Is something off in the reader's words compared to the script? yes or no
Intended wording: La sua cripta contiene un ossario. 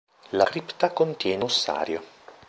yes